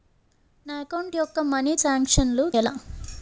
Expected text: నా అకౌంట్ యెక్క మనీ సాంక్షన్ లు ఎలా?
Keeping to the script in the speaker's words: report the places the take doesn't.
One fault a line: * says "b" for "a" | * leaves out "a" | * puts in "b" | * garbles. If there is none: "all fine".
all fine